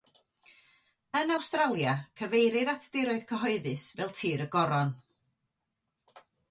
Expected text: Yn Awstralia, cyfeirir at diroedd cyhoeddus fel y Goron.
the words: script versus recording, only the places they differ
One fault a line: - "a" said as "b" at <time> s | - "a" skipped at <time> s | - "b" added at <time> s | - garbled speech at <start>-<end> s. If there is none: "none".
- "tir" added at 4.2 s